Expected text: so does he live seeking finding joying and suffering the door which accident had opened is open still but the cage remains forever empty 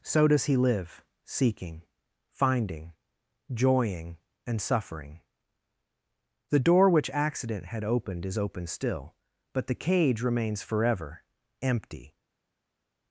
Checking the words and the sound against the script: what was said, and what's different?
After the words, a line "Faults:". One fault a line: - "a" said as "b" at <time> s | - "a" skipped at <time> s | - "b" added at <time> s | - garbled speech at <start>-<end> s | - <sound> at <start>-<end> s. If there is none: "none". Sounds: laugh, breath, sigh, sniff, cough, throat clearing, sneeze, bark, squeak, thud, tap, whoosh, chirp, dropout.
so does he live seeking finding joying and suffering the door which accident had opened is open still but the cage remains forever empty
Faults:
none